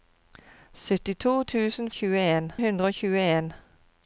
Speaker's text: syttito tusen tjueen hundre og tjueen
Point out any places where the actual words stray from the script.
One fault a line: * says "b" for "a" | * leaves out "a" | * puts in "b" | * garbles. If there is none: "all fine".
all fine